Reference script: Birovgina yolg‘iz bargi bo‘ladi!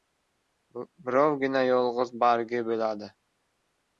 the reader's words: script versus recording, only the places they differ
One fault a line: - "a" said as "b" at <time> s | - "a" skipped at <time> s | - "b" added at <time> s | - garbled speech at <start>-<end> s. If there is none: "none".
none